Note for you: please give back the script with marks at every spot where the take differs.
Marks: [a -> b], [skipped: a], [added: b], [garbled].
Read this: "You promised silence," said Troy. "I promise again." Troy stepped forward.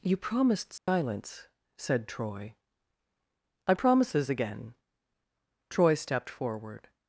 "You promised silence," said Troy. "I [promise -> promises] again." Troy stepped forward.